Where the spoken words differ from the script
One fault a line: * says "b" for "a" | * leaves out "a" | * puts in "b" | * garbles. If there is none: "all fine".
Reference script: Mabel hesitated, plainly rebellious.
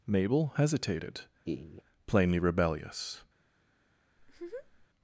all fine